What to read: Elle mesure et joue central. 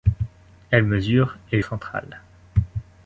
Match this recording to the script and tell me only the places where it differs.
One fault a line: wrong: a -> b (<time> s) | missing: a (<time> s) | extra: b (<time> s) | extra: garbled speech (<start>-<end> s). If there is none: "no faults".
missing: joue (1.6 s)